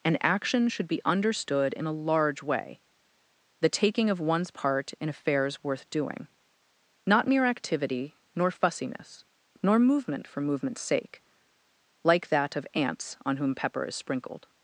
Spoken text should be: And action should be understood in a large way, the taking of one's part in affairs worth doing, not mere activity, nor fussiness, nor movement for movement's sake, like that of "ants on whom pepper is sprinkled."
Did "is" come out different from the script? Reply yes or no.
no